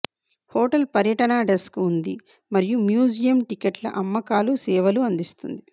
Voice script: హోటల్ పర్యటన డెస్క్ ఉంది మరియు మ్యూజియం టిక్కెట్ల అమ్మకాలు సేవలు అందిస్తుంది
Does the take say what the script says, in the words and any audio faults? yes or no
yes